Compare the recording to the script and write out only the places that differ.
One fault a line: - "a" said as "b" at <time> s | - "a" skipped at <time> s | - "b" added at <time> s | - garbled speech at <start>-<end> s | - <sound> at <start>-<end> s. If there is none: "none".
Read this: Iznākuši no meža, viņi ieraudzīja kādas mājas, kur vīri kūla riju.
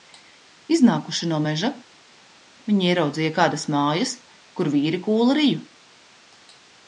none